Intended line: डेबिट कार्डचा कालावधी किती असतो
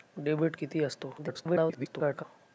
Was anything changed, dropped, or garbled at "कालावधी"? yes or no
yes